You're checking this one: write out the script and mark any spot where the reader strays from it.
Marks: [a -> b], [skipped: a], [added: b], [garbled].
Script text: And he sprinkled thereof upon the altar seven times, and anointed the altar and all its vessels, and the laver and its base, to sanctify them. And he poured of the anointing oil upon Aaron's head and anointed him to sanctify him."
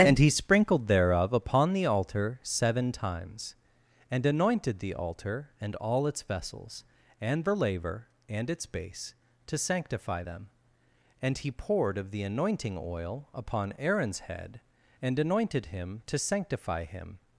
And he sprinkled thereof upon the altar seven times, and anointed the altar and all its vessels, and the laver and its base, to sanctify them. And he poured of the anointing oil upon Aaron's head and anointed him to sanctify him."